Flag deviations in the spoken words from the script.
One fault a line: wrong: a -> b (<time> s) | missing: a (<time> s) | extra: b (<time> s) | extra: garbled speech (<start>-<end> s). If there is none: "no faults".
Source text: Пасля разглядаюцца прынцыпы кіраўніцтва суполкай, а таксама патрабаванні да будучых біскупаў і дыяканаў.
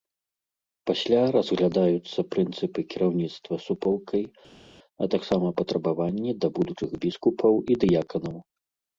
no faults